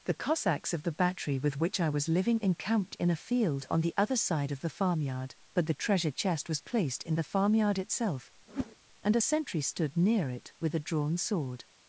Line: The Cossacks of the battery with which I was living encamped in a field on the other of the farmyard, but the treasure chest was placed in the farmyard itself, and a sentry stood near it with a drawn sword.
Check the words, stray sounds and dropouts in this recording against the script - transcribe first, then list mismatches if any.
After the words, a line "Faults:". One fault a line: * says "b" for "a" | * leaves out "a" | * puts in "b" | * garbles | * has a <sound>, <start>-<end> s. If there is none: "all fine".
The Cossacks of the battery with which I was living encamped in a field on the other side of the farmyard, but the treasure chest was placed in the farmyard itself, and a sentry stood near it with a drawn sword.
Faults:
* puts in "side"
* has a whoosh, 8.5-8.8 s